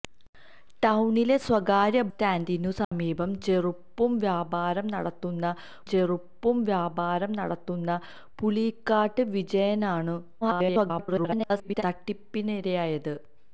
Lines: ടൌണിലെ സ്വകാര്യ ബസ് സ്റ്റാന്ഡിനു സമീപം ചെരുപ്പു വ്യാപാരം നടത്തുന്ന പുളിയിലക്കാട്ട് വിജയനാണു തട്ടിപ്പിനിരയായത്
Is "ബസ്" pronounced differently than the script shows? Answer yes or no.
yes